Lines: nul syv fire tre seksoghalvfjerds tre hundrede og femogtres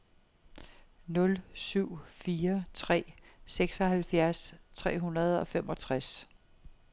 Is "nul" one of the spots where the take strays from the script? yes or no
no